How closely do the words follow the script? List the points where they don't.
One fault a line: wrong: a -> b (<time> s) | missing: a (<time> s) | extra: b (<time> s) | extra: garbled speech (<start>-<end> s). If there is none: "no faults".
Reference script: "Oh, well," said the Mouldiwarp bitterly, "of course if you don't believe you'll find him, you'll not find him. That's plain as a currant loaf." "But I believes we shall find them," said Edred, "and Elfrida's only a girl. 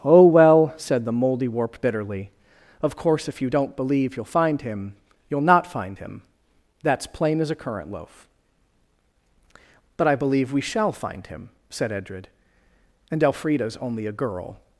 wrong: believes -> believe (10.2 s)
wrong: them -> him (11.3 s)